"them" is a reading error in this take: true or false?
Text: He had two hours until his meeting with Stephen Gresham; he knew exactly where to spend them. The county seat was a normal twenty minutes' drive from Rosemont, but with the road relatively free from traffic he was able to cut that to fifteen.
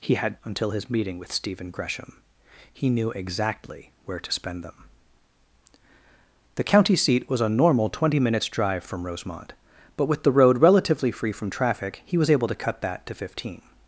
false